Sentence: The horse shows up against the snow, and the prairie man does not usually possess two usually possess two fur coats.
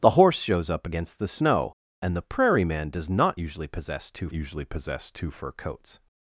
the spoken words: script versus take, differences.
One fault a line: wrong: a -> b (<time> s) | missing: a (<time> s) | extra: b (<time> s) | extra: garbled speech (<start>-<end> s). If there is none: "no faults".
no faults